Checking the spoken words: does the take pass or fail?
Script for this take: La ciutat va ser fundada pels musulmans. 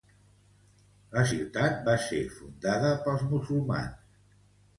pass